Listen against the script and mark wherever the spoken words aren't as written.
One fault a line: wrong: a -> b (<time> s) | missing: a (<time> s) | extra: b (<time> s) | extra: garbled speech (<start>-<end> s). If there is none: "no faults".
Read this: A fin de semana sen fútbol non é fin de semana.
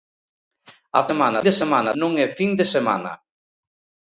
wrong: fin -> semana (1.1 s)
missing: sen fútbol (1.9 s)